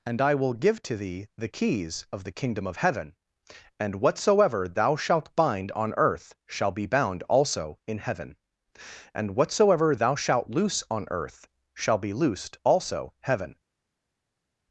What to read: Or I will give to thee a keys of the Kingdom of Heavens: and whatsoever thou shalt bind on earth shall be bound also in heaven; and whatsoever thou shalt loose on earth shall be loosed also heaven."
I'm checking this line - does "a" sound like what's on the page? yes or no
no